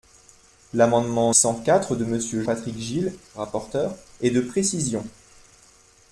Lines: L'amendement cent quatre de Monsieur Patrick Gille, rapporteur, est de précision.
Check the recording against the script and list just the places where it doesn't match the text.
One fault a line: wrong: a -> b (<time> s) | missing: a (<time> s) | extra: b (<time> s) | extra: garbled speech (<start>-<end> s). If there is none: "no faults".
no faults